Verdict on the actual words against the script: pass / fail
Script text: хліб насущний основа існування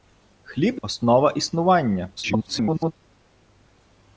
fail